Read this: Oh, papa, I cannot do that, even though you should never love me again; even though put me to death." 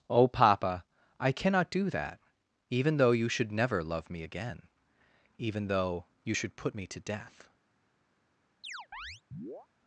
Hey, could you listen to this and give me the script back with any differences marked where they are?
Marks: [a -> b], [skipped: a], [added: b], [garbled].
Oh, papa, I cannot do that, even though you should never love me again; even though [added: you should] put me to death."